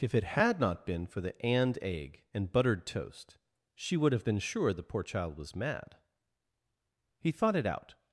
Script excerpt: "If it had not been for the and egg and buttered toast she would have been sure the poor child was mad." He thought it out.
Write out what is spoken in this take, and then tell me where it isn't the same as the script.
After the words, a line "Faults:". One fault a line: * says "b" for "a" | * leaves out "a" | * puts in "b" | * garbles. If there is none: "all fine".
"If it had not been for the and egg and buttered toast she would have been sure the poor child was mad." He thought it out.
Faults:
all fine